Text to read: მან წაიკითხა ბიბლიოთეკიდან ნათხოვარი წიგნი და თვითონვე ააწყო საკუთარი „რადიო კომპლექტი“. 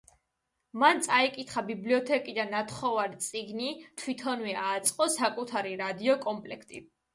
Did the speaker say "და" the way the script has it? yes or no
no